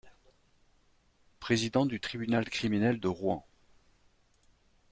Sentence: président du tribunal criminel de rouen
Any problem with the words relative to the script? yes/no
no